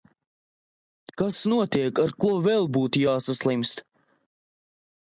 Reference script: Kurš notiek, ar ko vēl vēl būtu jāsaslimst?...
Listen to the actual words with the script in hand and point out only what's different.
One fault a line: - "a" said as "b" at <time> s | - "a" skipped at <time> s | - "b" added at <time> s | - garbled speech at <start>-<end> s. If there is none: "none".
- "Kurš" said as "Kas" at 1.2 s
- "vēl" skipped at 2.7 s